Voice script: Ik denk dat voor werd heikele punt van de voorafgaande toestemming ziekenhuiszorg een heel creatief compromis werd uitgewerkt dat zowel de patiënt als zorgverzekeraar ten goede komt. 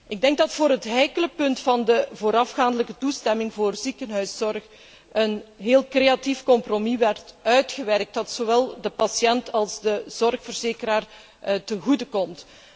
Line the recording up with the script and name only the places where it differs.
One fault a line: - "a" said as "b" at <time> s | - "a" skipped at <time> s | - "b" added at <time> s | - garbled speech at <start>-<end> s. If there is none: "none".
- "werd" said as "het" at 0.7 s
- "voor" added at 3.5 s
- "de" added at 9.8 s